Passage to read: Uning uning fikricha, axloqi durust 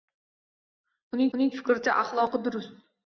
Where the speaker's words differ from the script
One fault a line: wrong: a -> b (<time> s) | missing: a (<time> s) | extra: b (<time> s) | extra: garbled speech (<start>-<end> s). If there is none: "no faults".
no faults